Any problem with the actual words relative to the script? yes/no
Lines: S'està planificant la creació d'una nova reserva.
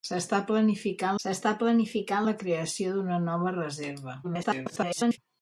yes